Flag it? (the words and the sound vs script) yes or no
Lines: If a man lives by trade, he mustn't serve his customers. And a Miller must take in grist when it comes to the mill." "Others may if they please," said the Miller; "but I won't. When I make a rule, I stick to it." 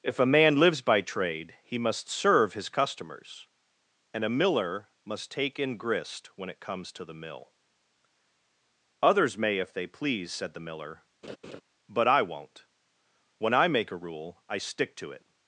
yes